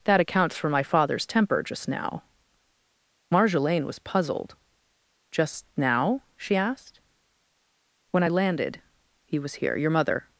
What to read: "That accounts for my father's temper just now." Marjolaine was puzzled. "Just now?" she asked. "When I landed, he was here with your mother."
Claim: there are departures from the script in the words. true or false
true